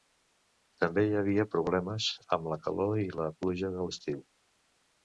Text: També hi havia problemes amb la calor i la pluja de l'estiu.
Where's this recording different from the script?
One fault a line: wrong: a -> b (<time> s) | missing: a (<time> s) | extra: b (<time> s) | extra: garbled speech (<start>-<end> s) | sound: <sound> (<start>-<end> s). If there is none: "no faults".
no faults